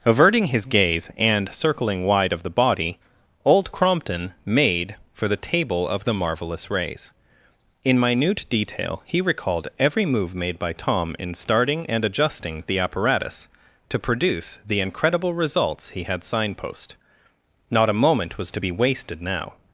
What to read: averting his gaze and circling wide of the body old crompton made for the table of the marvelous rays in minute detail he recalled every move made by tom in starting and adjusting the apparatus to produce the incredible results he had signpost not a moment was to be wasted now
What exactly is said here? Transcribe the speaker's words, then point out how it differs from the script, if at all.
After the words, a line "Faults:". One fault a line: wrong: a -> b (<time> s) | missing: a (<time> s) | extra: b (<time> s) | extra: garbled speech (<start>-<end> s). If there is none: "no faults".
averting his gaze and circling wide of the body old crompton made for the table of the marvelous rays in minute detail he recalled every move made by tom in starting and adjusting the apparatus to produce the incredible results he had signpost not a moment was to be wasted now
Faults:
no faults